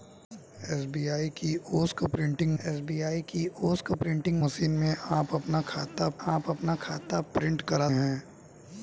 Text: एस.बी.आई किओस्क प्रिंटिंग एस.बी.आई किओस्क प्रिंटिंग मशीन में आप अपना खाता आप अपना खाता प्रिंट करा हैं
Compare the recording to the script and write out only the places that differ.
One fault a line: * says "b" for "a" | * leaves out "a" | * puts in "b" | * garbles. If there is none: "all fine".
all fine